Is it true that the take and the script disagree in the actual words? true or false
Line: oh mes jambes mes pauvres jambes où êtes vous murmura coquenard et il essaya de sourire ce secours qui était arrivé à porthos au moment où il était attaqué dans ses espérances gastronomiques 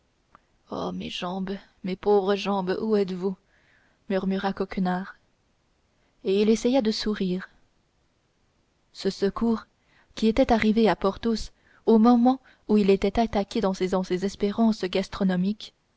true